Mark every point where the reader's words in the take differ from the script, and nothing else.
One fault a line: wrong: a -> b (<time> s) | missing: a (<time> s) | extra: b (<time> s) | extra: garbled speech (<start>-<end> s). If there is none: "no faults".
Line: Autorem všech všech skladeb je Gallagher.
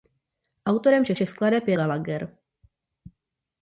no faults